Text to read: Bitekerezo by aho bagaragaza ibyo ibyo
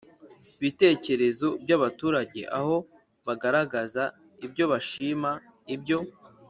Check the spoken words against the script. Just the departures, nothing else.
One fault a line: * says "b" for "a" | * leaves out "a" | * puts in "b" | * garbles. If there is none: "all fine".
* puts in "abaturage"
* puts in "bashima"